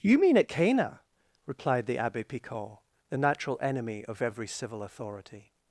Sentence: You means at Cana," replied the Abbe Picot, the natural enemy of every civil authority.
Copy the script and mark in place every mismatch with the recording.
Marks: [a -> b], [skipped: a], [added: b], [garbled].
You [means -> mean] at Cana," replied the Abbe Picot, the natural enemy of every civil authority.